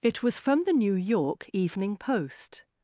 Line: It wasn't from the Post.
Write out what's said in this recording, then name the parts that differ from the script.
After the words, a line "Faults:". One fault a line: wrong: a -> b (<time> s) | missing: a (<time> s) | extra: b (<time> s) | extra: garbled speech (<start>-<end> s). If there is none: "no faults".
It was from the New York Evening Post.
Faults:
wrong: wasn't -> was (0.2 s)
extra: New York Evening (0.7 s)